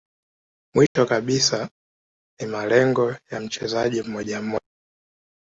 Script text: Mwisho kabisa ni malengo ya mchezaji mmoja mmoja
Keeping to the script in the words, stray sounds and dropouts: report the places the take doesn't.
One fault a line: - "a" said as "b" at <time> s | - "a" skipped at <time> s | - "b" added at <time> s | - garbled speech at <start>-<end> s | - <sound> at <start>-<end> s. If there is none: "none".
- dropout at 0.9-1.0 s